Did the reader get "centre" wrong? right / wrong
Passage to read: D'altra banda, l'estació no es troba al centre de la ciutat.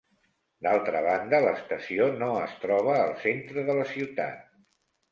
right